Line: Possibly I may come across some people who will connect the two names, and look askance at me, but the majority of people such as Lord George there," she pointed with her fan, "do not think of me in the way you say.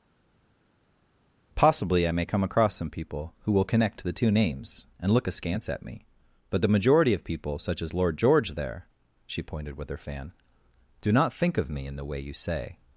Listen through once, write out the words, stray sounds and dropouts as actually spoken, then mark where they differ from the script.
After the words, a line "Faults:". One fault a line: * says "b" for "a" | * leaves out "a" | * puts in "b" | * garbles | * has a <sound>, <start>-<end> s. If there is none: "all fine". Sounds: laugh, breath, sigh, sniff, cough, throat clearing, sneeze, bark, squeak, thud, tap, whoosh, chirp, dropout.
Possibly I may come across some people who will connect the two names, and look askance at me, but the majority of people such as Lord George there," she pointed with her fan, "do not think of me in the way you say.
Faults:
all fine